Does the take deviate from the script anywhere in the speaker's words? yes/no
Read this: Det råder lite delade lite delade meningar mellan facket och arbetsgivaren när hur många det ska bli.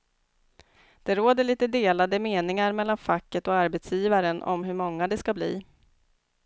yes